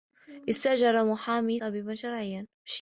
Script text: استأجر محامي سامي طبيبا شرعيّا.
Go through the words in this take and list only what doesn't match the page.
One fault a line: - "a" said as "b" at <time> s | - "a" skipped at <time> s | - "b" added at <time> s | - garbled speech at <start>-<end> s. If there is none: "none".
- "سامي" skipped at 1.6 s